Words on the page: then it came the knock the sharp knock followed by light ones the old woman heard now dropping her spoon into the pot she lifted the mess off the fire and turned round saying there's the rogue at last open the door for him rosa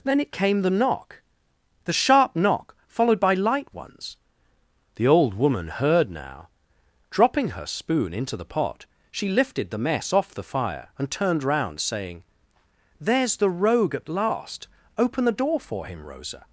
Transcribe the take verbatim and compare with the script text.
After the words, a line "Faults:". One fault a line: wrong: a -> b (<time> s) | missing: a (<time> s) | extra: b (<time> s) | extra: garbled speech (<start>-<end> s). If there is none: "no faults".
then it came the knock the sharp knock followed by light ones the old woman heard now dropping her spoon into the pot she lifted the mess off the fire and turned round saying there's the rogue at last open the door for him rosa
Faults:
no faults